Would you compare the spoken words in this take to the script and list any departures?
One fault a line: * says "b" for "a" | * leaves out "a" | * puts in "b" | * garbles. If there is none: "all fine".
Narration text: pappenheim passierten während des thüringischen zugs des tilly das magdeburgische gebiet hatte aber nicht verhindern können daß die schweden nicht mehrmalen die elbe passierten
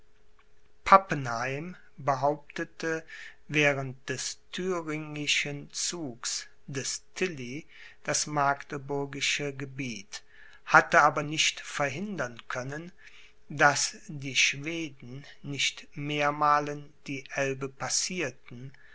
* says "behauptete" for "passierten"